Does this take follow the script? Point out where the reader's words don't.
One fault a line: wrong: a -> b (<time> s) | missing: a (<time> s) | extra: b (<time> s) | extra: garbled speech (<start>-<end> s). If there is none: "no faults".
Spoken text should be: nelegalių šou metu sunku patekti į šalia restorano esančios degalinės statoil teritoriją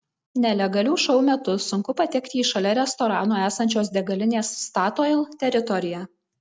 no faults